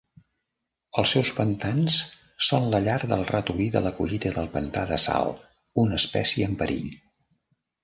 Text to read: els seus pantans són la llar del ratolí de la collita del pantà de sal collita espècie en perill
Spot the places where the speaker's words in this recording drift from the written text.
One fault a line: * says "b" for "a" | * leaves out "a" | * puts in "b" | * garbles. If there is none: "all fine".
* says "una" for "collita"